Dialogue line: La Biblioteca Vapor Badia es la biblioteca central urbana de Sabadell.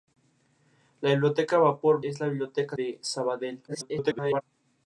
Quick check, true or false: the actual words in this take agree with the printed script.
false